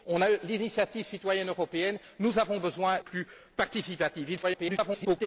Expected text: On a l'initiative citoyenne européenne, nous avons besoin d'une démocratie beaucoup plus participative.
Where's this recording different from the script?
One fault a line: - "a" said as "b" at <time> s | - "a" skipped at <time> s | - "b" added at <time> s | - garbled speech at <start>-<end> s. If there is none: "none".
- "d'une démocratie beaucoup" skipped at 3.0 s
- garbled speech at 4.4-5.3 s